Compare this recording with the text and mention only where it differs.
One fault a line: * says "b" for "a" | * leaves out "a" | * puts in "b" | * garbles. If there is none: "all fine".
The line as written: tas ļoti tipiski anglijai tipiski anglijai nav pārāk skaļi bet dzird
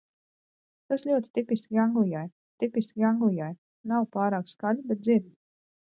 all fine